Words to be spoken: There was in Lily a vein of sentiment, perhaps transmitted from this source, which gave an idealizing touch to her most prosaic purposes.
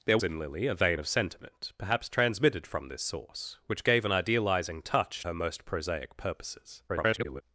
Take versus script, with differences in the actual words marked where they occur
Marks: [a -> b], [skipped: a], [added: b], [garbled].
There [skipped: was] in Lily a vein of sentiment, perhaps transmitted from this source, which gave an idealizing touch [skipped: to] her most prosaic purposes. [garbled]